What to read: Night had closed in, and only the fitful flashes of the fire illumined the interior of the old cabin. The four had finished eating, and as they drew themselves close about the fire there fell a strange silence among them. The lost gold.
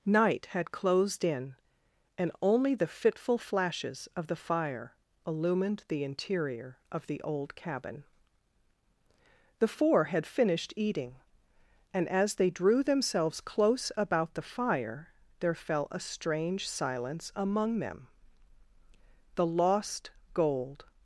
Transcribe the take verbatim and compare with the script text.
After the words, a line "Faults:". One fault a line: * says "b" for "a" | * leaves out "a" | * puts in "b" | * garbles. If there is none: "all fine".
Night had closed in, and only the fitful flashes of the fire illumined the interior of the old cabin. The four had finished eating, and as they drew themselves close about the fire there fell a strange silence among them. The lost gold.
Faults:
all fine